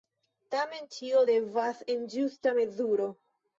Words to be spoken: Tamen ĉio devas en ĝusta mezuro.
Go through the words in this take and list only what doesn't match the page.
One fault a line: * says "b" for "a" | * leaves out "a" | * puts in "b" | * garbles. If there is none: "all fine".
all fine